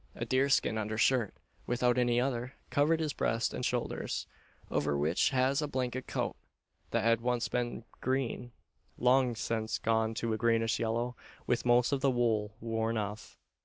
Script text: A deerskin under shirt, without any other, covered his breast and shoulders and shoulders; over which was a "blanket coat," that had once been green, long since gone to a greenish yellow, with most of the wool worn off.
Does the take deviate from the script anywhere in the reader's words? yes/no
yes